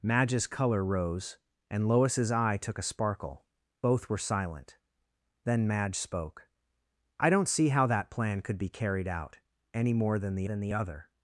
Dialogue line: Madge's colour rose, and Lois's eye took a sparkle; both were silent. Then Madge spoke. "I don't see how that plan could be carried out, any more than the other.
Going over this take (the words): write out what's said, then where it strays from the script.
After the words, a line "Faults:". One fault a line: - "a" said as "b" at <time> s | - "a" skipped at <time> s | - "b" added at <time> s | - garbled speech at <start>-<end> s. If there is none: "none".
Madge's colour rose, and Lois's eye took a sparkle; both were silent. Then Madge spoke. "I don't see how that plan could be carried out, any more than the than the other.
Faults:
- "than the" added at 10.4 s